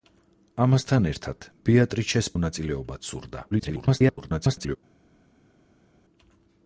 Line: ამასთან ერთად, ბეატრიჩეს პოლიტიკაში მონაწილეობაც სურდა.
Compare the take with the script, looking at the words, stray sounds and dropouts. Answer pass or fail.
fail